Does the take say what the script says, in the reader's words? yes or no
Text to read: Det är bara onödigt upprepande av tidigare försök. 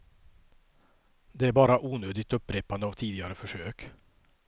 yes